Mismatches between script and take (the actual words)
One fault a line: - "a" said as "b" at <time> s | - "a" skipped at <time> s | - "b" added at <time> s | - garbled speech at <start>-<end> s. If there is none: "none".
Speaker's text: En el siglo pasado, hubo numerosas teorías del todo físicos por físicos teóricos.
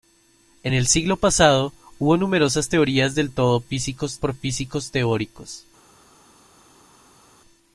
none